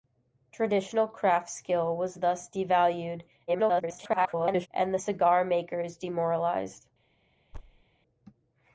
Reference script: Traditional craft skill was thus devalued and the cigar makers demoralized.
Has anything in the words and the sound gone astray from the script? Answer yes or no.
yes